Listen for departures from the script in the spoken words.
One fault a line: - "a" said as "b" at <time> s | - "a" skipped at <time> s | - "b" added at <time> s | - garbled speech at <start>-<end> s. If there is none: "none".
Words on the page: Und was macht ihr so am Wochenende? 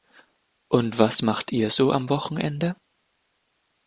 none